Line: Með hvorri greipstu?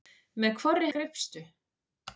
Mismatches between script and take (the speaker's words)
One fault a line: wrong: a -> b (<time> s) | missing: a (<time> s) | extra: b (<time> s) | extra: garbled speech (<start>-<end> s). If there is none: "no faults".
no faults